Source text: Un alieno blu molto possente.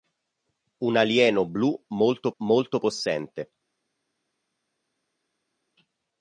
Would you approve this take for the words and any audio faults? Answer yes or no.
no